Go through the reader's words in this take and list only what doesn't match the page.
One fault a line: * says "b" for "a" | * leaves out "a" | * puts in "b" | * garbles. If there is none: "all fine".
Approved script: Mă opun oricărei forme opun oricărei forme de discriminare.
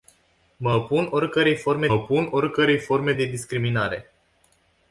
all fine